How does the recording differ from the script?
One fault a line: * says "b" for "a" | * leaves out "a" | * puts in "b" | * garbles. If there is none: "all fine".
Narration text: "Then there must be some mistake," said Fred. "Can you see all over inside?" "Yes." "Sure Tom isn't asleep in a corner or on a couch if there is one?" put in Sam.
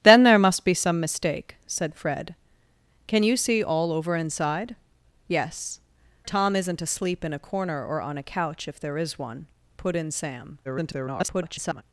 * leaves out "Sure"
* garbles